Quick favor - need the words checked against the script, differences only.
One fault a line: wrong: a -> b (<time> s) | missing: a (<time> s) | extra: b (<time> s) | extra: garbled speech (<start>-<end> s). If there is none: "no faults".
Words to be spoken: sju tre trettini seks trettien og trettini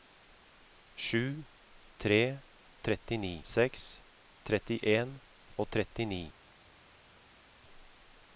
no faults